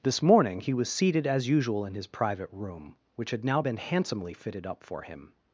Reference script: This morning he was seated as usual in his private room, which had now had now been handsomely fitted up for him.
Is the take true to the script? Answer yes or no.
no